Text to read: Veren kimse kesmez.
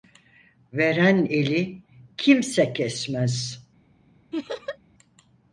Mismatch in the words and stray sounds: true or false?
true